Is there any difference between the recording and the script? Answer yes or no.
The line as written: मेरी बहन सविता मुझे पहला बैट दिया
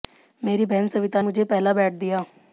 no